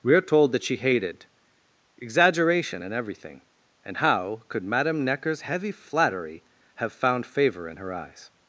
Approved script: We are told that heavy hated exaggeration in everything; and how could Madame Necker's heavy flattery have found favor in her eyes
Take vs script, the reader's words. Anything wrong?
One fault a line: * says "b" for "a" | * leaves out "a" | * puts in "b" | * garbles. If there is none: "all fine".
* says "she" for "heavy"